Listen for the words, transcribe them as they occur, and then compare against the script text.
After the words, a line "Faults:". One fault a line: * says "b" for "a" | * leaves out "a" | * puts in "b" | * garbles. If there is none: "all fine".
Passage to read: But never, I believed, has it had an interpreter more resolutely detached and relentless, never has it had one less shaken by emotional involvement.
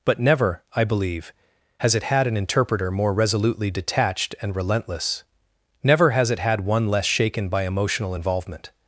But never, I believe, has it had an interpreter more resolutely detached and relentless, never has it had one less shaken by emotional involvement.
Faults:
* says "believe" for "believed"